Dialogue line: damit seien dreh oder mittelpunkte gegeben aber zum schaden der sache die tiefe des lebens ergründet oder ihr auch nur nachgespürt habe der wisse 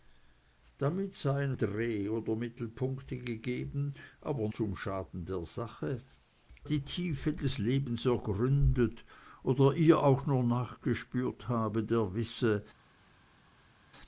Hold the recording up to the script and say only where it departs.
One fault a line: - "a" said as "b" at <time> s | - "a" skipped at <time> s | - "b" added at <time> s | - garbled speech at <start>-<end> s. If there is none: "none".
none